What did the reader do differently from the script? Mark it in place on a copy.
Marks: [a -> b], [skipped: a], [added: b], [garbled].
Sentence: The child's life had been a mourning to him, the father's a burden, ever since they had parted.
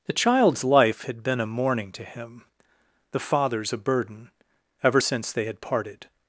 The child's life had been a mourning to him, the father's a burden, ever since they had parted.